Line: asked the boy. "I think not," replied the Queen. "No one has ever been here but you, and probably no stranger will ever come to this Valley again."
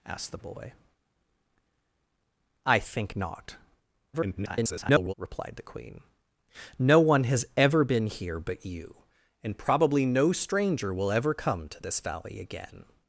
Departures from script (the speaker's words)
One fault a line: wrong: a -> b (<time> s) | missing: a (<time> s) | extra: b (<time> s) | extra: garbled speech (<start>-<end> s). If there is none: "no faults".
extra: garbled speech (4.1-5.1 s)